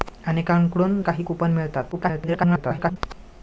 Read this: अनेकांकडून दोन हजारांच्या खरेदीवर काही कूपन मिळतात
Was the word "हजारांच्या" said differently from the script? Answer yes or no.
yes